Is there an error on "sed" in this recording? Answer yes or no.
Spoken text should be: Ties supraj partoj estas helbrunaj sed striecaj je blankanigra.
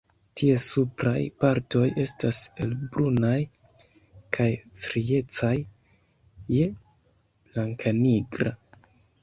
yes